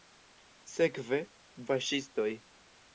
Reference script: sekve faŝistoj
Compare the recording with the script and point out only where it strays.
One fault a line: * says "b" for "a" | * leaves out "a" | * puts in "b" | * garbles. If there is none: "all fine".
all fine